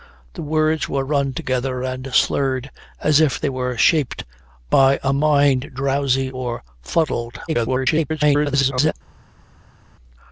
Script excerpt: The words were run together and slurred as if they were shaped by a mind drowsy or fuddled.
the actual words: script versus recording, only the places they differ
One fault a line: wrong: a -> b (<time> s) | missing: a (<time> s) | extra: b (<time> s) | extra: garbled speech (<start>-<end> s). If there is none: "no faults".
extra: garbled speech (7.5-8.9 s)